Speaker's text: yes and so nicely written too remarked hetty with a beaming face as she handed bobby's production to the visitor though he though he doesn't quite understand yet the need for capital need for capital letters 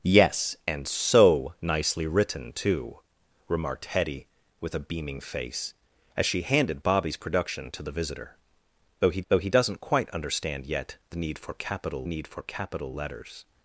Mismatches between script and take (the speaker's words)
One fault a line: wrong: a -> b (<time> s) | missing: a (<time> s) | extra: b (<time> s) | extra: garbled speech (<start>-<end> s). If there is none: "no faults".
no faults